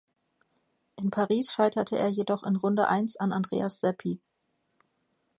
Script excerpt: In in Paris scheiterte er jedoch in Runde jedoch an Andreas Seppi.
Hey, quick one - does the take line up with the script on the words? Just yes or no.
no